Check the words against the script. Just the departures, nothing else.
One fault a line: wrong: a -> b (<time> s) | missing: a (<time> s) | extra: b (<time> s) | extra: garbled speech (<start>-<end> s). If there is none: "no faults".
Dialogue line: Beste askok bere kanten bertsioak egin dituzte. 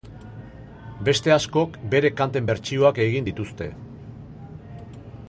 no faults